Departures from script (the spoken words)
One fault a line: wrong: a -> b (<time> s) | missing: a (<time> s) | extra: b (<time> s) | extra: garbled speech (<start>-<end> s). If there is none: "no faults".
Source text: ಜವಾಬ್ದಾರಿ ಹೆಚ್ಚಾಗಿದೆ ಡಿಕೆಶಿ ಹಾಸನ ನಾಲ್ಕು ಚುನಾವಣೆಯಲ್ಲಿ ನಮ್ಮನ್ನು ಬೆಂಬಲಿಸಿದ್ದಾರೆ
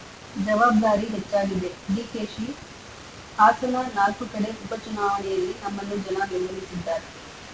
extra: ಕಡೆ ಉಪ (4.3 s)
extra: ಜನ (6.1 s)